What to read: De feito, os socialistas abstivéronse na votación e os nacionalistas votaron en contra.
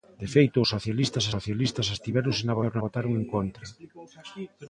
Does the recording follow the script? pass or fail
fail